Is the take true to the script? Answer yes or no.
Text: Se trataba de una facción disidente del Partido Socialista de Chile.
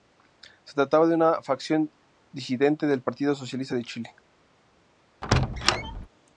yes